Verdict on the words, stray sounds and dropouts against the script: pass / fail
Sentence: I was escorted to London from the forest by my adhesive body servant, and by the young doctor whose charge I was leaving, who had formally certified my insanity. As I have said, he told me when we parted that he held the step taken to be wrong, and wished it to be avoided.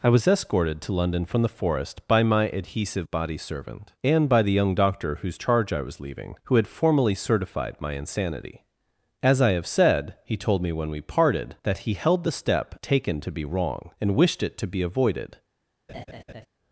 fail